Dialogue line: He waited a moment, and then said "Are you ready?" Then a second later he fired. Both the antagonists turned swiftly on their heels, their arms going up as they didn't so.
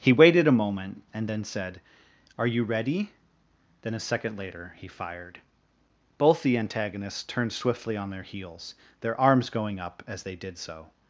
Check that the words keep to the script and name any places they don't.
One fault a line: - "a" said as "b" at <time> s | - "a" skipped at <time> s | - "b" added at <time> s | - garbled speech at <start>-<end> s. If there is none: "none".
- "didn't" said as "did" at 10.4 s